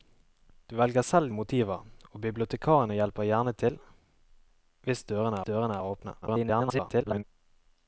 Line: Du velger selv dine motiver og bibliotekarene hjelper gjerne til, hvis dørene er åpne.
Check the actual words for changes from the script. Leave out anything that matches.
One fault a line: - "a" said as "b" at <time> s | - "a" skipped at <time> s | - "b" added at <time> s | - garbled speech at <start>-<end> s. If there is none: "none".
- "dine" skipped at 1.3 s
- "dørene" added at 5.4 s
- garbled speech at 6.2-7.2 s